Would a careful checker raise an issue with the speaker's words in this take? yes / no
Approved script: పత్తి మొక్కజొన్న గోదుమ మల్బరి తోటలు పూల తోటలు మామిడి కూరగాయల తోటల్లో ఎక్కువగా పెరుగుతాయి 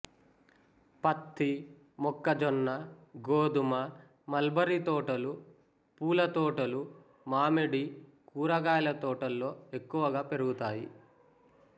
no